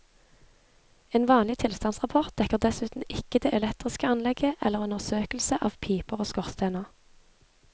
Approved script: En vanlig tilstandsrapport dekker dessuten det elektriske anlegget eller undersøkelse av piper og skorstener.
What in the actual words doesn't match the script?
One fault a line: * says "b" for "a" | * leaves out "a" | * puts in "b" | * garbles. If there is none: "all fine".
* puts in "ikke"